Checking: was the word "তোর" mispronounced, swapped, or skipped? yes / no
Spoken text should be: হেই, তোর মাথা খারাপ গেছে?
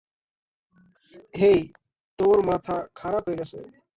no